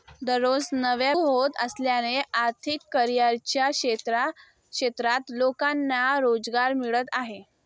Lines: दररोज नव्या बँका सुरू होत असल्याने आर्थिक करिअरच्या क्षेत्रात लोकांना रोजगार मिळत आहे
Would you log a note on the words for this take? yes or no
yes